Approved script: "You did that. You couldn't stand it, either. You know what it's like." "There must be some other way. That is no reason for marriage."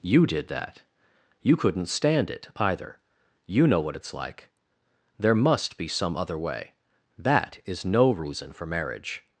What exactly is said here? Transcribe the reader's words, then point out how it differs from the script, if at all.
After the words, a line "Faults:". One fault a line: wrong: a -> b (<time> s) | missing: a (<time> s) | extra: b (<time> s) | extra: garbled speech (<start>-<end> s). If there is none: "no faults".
"You did that. You couldn't stand it, either. You know what it's like." "There must be some other way. That is no reason for marriage."
Faults:
no faults